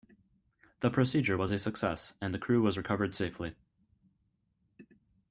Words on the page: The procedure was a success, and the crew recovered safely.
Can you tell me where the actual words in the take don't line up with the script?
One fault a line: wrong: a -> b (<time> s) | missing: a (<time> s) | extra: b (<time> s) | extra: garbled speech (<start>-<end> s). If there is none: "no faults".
extra: was (2.6 s)